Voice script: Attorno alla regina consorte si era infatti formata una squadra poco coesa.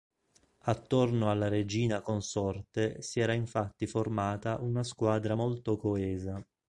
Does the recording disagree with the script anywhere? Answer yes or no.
yes